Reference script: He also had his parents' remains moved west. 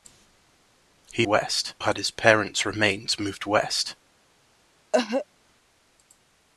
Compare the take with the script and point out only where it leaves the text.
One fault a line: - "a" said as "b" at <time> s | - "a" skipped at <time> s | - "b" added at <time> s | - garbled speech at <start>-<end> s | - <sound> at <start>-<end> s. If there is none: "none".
- "also" said as "west" at 1.2 s
- cough at 4.9-5.3 s